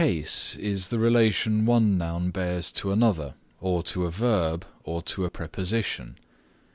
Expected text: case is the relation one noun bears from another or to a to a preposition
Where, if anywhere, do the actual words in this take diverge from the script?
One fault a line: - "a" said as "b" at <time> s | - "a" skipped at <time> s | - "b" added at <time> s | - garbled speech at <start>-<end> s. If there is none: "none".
- "from" said as "to" at 2.7 s
- "verb or" added at 4.1 s